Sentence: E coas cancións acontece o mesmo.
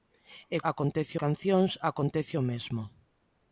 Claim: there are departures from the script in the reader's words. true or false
true